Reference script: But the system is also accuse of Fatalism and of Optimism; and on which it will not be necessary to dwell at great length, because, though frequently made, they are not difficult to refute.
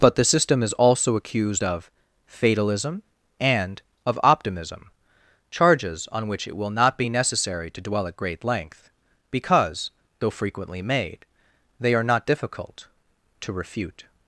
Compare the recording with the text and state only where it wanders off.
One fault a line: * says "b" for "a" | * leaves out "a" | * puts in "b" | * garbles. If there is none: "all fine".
* says "accused" for "accuse"
* says "charges" for "and"